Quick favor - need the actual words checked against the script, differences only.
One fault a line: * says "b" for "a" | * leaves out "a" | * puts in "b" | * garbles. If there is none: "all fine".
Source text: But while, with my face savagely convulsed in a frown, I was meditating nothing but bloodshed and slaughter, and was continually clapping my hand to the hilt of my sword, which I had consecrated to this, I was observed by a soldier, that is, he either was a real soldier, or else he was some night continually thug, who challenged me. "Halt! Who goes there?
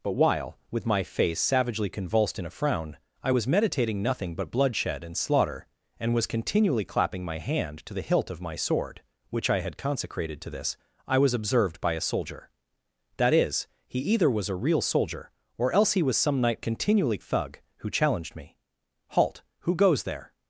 all fine